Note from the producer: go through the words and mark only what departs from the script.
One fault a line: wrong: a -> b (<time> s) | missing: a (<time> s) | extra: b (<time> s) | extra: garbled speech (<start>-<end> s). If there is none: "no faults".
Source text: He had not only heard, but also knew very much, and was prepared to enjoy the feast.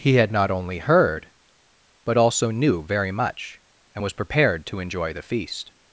no faults